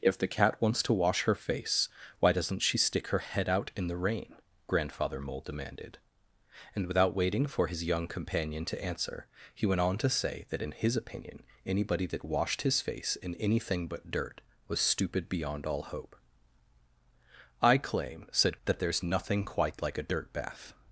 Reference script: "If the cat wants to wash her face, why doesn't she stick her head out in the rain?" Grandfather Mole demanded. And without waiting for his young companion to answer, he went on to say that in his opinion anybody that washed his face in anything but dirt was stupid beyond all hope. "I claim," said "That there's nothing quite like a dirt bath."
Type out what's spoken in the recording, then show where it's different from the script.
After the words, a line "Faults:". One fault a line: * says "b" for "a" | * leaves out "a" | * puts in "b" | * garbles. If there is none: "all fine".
"If the cat wants to wash her face, why doesn't she stick her head out in the rain?" Grandfather Mole demanded. And without waiting for his young companion to answer, he went on to say that in his opinion anybody that washed his face in anything but dirt was stupid beyond all hope. "I claim," said "That there's nothing quite like a dirt bath."
Faults:
all fine